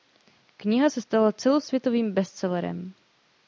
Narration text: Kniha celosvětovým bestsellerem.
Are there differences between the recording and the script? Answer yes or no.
yes